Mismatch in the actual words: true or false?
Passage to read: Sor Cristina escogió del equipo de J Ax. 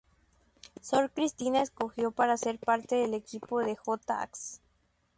true